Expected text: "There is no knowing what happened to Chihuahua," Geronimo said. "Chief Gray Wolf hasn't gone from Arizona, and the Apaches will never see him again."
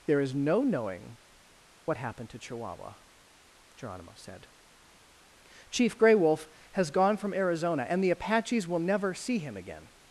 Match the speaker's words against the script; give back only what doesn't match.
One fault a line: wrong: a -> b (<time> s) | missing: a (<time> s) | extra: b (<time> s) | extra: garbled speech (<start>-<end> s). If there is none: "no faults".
wrong: hasn't -> has (6.7 s)